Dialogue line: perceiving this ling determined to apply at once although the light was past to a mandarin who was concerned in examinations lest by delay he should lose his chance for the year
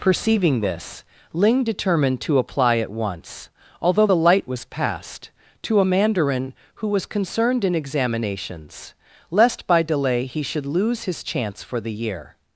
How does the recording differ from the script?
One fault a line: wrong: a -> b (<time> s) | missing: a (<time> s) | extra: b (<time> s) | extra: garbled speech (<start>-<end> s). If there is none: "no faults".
no faults